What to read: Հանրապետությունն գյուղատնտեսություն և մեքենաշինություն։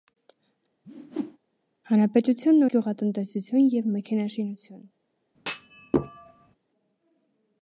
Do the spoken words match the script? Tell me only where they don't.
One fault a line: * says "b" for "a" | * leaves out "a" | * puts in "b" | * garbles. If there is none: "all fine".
all fine